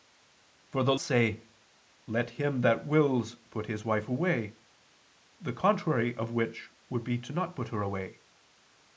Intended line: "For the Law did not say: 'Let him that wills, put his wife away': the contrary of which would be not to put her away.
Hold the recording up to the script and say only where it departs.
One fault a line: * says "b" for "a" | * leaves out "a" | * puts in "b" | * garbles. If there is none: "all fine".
* leaves out "Law did not"